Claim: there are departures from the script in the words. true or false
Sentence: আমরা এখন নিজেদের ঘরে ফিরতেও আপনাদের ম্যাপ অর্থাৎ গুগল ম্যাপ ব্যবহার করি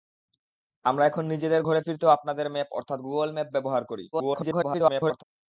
true